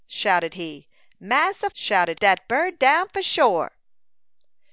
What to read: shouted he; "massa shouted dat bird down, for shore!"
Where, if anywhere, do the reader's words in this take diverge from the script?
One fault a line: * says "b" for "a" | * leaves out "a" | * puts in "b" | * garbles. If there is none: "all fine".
all fine